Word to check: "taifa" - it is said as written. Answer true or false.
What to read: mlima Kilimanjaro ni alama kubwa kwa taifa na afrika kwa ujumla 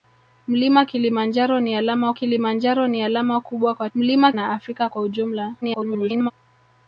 false